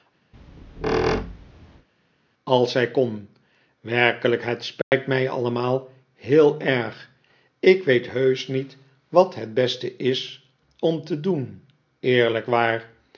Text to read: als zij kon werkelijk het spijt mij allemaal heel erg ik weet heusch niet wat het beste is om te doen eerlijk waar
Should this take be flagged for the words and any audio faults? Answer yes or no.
yes